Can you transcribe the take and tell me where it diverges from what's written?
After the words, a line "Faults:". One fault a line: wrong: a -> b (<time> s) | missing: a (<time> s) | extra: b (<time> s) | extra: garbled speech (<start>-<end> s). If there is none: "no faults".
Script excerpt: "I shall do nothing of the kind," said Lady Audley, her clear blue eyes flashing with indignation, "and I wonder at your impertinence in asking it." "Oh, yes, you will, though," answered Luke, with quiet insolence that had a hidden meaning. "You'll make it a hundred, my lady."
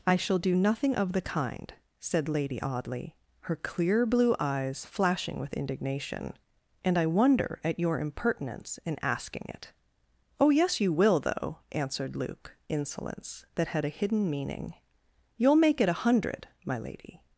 "I shall do nothing of the kind," said Lady Audley, her clear blue eyes flashing with indignation, "and I wonder at your impertinence in asking it." "Oh, yes, you will, though," answered Luke, insolence that had a hidden meaning. "You'll make it a hundred, my lady."
Faults:
missing: with quiet (12.6 s)